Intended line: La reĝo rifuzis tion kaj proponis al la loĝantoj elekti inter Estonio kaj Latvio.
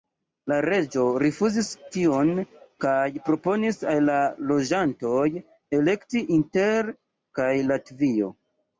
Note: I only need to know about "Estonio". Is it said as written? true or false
false